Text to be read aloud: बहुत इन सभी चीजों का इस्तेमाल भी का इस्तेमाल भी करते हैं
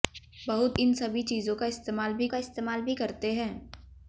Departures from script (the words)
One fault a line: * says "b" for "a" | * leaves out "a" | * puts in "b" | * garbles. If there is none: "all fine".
all fine